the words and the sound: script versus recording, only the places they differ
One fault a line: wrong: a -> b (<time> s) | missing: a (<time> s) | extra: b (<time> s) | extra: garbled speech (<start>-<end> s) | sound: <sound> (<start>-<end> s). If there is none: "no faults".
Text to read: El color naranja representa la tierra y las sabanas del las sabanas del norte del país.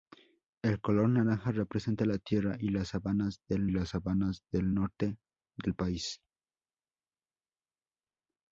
no faults